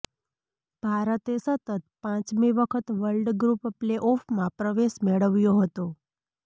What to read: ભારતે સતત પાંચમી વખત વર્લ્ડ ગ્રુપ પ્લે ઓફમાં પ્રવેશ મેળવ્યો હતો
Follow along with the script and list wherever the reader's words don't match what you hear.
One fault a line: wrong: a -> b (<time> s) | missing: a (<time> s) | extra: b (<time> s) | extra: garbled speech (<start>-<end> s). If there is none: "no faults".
no faults